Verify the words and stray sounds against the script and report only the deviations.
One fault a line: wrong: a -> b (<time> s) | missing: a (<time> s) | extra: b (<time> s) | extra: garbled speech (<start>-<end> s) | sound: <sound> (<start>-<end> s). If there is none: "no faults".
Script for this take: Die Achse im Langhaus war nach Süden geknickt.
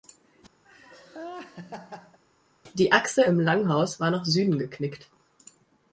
sound: laugh (0.6-2.2 s)